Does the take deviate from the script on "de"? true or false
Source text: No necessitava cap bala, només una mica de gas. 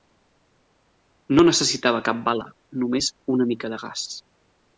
false